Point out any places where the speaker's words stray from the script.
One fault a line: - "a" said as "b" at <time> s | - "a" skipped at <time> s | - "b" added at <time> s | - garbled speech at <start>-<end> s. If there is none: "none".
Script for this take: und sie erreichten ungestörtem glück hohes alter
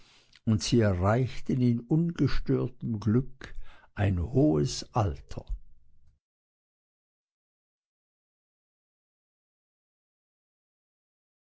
- "in" added at 1.6 s
- "ein" added at 3.9 s